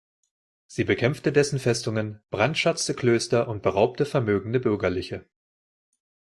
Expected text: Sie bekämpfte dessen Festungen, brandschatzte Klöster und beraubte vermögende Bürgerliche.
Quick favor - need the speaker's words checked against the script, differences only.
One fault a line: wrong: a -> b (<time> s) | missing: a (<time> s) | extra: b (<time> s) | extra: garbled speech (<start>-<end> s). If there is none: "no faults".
no faults